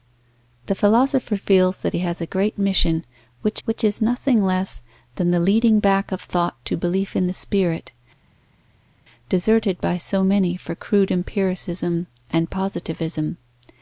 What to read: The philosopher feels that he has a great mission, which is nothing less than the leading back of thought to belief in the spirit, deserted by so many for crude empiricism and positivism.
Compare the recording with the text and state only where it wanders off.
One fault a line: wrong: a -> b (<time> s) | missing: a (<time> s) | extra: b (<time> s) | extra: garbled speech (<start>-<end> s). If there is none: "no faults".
extra: which (3.7 s)